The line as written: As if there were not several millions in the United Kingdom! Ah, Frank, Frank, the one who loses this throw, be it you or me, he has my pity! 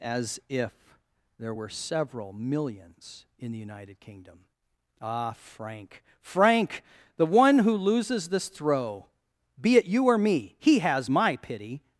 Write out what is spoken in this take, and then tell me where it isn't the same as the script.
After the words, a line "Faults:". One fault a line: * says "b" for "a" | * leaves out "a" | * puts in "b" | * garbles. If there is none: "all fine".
As if there were several millions in the United Kingdom! Ah, Frank, Frank, the one who loses this throw, be it you or me, he has my pity!
Faults:
* leaves out "not"